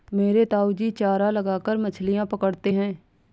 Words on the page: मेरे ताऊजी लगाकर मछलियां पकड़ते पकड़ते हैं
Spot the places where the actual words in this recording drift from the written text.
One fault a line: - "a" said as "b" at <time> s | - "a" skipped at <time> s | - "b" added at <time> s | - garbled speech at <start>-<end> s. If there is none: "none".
- "चारा" added at 0.9 s
- "पकड़ते" skipped at 2.7 s